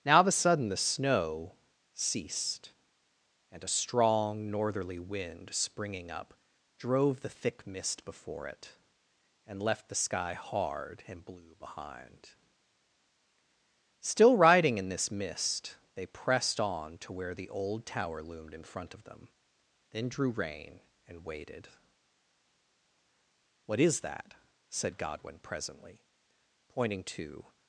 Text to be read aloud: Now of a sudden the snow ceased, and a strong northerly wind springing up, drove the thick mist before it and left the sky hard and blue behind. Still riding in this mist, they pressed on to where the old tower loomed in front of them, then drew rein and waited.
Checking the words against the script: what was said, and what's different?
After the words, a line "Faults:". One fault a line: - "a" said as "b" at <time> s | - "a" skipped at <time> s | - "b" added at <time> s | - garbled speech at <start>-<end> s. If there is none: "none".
Now of a sudden the snow ceased, and a strong northerly wind springing up, drove the thick mist before it and left the sky hard and blue behind. Still riding in this mist, they pressed on to where the old tower loomed in front of them, then drew rein and waited. "What is that?" said Godwin presently, pointing to
Faults:
- "What is that said Godwin presently pointing to" added at 23.6 s